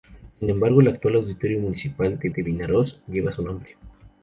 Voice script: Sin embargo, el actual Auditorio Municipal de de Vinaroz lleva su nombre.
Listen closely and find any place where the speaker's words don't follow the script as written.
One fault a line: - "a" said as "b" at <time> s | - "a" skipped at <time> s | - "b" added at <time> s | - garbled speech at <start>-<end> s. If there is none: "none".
none